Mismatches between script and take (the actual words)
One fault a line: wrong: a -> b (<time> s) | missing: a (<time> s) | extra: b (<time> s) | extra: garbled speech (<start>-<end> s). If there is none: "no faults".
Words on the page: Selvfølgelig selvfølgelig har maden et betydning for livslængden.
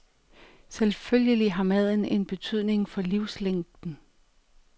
missing: selvfølgelig (1.5 s)
wrong: et -> en (2.0 s)